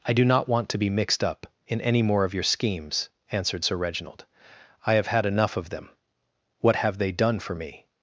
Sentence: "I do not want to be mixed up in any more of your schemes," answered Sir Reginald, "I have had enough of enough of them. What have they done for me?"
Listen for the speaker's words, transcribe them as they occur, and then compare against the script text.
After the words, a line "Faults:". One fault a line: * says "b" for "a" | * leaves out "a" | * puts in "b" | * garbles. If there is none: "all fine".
"I do not want to be mixed up in any more of your schemes," answered Sir Reginald, "I have had enough of them. What have they done for me?"
Faults:
* leaves out "enough of"